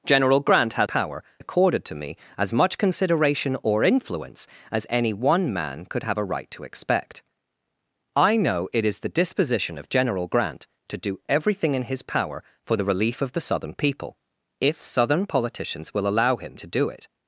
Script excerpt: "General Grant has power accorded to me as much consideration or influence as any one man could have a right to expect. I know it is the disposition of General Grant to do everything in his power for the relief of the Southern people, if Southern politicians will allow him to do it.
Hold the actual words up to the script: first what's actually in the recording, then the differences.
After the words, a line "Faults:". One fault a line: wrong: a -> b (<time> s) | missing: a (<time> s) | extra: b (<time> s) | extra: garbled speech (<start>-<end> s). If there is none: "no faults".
"General Grant has power accorded to me as much consideration or influence as any one man could have a right to expect. I know it is the disposition of General Grant to do everything in his power for the relief of the Southern people, if Southern politicians will allow him to do it.
Faults:
no faults